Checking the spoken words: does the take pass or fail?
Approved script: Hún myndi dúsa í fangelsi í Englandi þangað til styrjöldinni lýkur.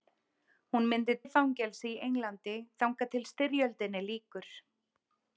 fail